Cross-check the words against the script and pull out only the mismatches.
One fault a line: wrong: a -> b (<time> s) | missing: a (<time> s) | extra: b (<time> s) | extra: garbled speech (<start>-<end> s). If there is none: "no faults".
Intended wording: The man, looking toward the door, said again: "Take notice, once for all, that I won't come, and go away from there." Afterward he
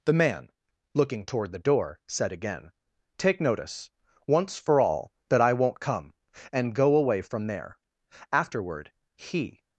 no faults